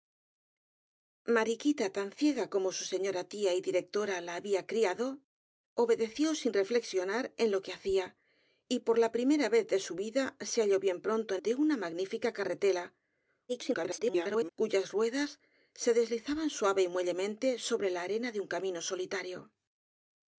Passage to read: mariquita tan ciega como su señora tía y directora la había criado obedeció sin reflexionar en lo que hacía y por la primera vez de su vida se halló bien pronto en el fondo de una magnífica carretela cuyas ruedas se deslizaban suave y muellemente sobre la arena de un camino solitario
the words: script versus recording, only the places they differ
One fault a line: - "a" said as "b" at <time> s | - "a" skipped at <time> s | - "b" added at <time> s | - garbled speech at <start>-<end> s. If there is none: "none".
- "el fondo" skipped at 11.4 s
- garbled speech at 13.5-14.5 s